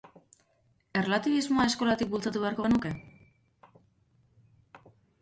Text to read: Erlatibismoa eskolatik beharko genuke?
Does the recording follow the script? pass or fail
fail